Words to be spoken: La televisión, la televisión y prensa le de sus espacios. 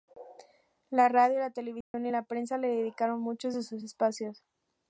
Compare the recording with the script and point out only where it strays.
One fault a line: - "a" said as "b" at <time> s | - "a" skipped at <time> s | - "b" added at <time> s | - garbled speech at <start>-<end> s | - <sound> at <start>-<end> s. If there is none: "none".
- "televisión" said as "radio" at 1.1 s
- dropout at 1.8-1.9 s
- "la" added at 2.1 s
- "dedicaron muchos" added at 2.7 s